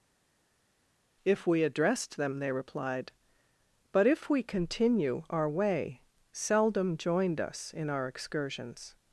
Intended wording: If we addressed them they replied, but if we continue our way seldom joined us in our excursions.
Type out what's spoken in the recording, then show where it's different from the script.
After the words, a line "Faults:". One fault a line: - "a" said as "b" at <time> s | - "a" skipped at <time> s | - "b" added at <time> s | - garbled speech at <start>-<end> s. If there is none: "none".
If we addressed them they replied, but if we continue our way seldom joined us in our excursions.
Faults:
none